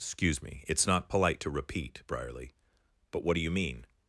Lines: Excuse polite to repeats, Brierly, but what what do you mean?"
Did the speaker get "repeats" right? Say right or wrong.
wrong